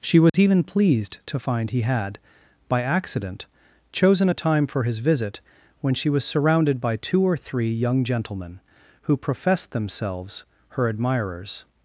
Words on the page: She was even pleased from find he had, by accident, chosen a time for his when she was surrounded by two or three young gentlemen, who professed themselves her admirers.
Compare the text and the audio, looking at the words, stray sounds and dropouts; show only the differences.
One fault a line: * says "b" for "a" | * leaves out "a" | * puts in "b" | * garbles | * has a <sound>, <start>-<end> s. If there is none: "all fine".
* has a dropout, 0.3-0.3 s
* says "to" for "from"
* puts in "visit"